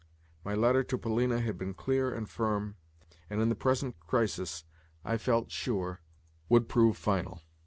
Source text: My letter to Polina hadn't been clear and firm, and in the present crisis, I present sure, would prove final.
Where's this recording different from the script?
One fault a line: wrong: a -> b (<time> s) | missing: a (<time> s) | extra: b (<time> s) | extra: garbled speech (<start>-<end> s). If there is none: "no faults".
wrong: hadn't -> had (1.4 s)
wrong: present -> felt (5.2 s)